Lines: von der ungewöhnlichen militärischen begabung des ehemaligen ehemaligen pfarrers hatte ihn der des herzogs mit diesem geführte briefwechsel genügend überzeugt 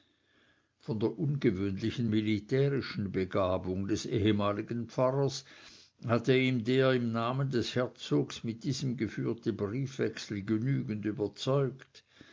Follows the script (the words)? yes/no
no